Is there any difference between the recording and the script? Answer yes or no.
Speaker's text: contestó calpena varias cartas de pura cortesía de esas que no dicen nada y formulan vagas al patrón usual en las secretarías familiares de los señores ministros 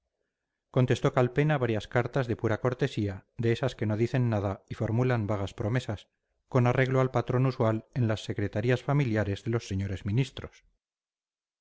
yes